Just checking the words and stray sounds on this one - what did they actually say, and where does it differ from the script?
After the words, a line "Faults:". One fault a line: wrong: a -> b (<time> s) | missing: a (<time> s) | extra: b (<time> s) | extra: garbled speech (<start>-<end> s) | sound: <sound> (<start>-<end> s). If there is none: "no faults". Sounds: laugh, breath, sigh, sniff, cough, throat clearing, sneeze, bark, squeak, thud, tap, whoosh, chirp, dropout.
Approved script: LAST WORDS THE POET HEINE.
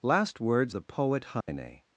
LAST WORDS THE POET HEINE.
Faults:
sound: dropout (1.4-1.5 s)